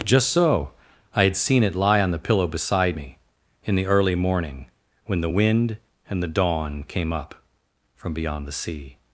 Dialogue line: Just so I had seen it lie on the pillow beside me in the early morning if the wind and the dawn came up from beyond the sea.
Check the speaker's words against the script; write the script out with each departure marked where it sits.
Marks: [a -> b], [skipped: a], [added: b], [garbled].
Just so I had seen it lie on the pillow beside me in the early morning [if -> when] the wind and the dawn came up from beyond the sea.